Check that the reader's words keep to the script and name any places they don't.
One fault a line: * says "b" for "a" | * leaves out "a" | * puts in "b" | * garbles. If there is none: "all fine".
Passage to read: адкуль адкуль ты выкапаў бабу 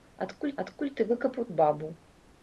all fine